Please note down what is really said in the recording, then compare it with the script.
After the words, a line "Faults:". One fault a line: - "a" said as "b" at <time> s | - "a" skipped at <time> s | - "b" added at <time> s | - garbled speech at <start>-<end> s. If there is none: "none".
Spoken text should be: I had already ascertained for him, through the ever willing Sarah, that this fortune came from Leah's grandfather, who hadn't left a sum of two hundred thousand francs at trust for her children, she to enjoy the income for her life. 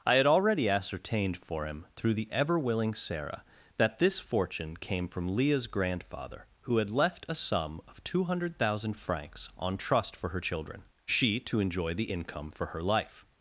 I had already ascertained for him, through the ever willing Sarah, that this fortune came from Leah's grandfather, who had left a sum of two hundred thousand francs on trust for her children, she to enjoy the income for her life.
Faults:
- "hadn't" said as "had" at 6.8 s
- "at" said as "on" at 9.6 s